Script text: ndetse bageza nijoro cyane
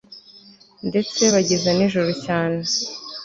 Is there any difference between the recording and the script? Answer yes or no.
no